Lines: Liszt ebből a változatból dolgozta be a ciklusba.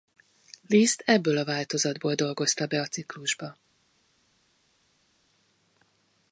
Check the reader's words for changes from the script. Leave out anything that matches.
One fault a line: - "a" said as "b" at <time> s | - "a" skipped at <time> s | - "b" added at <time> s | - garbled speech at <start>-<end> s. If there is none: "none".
none